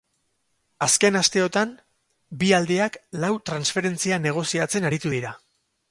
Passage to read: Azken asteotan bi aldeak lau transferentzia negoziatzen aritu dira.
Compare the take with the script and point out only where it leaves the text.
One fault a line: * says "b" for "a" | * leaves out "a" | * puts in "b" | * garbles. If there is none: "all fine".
all fine